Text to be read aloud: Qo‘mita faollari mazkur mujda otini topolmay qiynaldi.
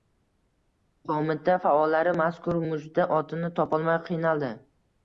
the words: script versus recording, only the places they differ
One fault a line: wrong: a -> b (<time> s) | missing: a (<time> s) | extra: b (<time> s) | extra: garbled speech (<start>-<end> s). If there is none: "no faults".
no faults